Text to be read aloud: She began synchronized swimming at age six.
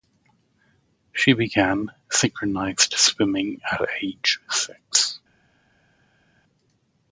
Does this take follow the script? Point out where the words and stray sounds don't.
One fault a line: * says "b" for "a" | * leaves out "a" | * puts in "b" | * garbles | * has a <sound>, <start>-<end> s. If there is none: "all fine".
all fine